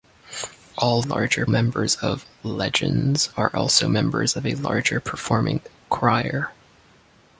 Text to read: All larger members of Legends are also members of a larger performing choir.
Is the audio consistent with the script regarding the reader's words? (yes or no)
yes